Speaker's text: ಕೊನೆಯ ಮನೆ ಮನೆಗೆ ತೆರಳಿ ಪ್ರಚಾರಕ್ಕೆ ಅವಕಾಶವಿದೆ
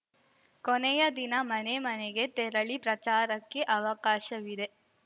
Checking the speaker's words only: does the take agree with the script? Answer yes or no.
no